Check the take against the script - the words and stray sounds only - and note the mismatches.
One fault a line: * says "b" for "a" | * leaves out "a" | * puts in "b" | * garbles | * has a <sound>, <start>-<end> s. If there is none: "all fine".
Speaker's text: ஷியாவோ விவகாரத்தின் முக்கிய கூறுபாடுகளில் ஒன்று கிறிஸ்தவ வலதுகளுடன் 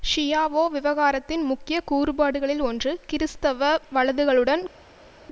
all fine